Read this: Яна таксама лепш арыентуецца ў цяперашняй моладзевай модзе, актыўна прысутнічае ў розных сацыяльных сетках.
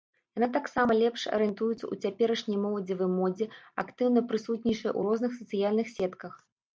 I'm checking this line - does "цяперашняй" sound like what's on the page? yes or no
yes